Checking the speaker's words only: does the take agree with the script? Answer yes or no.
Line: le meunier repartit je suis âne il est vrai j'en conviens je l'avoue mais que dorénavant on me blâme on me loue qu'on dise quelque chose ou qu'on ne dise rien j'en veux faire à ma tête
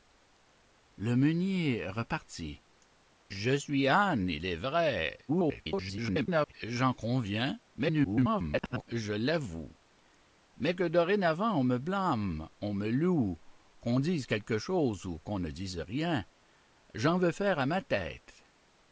no